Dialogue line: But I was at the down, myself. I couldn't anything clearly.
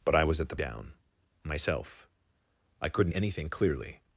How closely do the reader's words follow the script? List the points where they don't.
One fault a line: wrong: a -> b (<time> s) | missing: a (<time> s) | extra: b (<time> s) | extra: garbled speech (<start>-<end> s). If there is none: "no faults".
no faults